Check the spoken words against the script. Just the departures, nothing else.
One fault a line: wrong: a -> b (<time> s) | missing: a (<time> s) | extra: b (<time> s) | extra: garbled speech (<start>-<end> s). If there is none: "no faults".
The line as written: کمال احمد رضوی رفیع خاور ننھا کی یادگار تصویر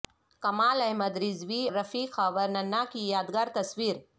no faults